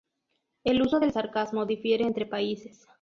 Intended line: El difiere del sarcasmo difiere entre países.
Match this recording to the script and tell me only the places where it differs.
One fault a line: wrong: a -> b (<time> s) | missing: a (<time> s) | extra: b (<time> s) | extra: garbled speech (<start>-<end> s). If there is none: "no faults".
wrong: difiere -> uso (0.8 s)